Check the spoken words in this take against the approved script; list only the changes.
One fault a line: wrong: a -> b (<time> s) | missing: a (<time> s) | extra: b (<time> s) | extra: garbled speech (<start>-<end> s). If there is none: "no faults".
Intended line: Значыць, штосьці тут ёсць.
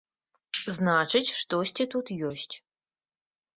no faults